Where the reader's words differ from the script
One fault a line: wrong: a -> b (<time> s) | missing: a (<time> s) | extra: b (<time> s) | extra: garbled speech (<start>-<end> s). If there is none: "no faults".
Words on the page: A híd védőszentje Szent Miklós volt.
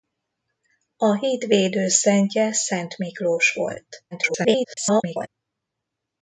extra: garbled speech (4.1-5.3 s)